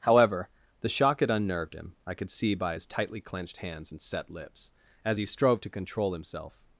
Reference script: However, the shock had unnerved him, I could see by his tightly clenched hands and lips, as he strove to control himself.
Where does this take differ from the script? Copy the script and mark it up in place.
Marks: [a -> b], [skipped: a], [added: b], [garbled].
However, the shock had unnerved him, I could see by his tightly clenched hands and [added: set] lips, as he strove to control himself.